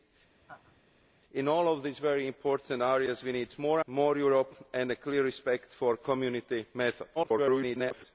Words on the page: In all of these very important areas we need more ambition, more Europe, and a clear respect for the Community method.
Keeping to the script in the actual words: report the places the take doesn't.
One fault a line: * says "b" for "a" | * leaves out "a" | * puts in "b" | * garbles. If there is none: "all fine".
* leaves out "ambition"
* garbles